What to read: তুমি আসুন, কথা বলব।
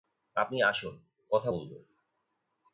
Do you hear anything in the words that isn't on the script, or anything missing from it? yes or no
yes